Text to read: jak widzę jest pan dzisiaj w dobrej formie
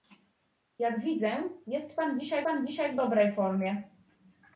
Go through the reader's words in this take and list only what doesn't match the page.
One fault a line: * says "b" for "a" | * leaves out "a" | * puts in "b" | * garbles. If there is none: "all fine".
* puts in "pan dzisiaj"